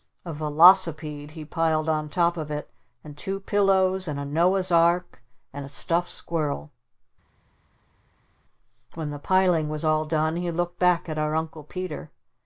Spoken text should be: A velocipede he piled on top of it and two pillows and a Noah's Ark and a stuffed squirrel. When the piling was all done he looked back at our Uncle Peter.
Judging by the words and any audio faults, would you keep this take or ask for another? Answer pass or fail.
pass